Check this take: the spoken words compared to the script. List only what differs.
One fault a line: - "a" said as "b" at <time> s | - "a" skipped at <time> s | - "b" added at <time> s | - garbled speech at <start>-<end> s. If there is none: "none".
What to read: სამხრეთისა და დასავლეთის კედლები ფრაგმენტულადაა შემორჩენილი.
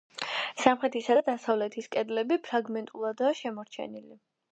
none